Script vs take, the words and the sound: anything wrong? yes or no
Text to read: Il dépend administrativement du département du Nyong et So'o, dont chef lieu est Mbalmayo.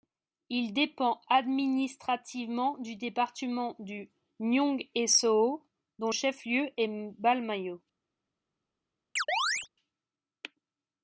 yes